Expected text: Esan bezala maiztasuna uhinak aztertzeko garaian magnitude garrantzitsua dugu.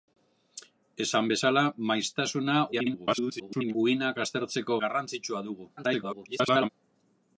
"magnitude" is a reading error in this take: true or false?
true